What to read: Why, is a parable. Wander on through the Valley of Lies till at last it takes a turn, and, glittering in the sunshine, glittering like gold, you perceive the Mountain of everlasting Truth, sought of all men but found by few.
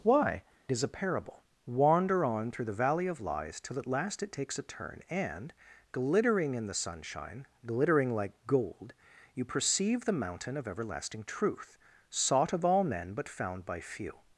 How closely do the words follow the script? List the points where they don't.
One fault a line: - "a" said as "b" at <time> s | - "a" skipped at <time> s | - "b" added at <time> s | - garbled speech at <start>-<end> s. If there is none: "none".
none